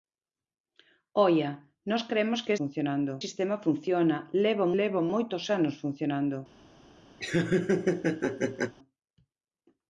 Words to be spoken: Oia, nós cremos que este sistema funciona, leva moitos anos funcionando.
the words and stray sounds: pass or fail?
fail